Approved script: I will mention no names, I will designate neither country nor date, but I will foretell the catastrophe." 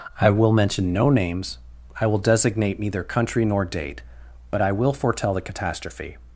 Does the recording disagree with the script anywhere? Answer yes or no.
no